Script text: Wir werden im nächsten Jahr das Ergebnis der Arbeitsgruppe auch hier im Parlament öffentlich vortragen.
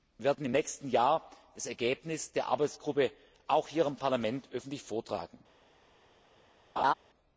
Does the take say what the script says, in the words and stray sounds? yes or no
no